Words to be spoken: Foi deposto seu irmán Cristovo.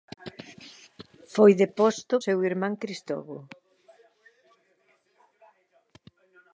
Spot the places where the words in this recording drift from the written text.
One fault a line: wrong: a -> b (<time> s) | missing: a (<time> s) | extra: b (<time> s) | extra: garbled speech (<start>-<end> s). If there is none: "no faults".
no faults